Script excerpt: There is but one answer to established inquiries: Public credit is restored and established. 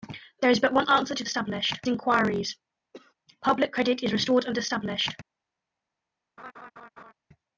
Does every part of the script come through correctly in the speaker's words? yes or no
yes